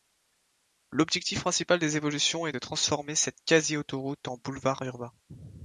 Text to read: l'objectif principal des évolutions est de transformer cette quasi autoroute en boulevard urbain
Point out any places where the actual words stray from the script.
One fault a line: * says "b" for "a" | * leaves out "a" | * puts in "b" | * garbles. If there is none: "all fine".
all fine